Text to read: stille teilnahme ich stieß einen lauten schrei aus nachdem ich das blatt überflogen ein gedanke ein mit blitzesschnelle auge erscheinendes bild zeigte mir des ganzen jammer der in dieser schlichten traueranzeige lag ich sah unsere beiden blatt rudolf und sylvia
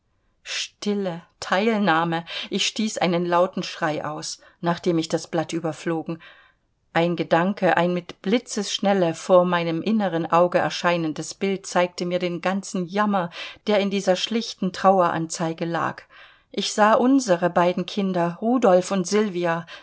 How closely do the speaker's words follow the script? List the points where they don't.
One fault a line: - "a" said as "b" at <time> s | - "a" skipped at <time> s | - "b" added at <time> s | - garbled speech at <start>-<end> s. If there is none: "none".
- "vor meinem inneren" added at 9.2 s
- "des" said as "den" at 12.2 s
- "blatt" said as "kinder" at 17.8 s